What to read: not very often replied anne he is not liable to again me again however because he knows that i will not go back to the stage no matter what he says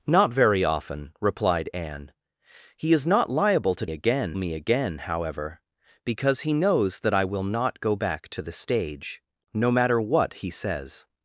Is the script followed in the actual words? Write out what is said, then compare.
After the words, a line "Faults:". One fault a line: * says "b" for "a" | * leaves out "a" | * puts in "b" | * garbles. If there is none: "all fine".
not very often replied anne he is not liable to again me again however because he knows that i will not go back to the stage no matter what he says
Faults:
all fine